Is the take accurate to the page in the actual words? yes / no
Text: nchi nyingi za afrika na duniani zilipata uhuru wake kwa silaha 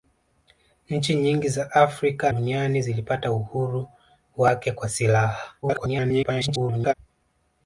no